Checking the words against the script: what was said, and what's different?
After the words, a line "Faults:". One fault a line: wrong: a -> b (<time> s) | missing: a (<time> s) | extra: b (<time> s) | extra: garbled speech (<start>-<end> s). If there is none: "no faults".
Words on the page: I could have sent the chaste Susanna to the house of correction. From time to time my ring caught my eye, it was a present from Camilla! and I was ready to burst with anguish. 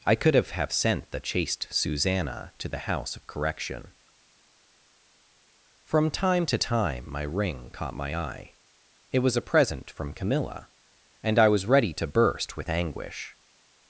I could have have sent the chaste Susanna to the house of correction. From time to time my ring caught my eye, it was a present from Camilla! and I was ready to burst with anguish.
Faults:
extra: have (0.5 s)